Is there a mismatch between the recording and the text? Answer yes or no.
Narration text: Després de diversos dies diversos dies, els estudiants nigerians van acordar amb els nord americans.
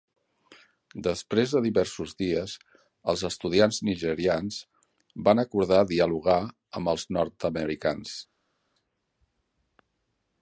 yes